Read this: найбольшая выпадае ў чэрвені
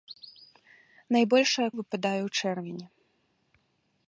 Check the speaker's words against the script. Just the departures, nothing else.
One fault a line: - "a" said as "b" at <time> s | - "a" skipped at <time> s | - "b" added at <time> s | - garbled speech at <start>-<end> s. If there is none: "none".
none